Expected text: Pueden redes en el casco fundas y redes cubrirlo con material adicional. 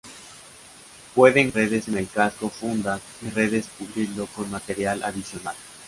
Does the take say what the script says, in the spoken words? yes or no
yes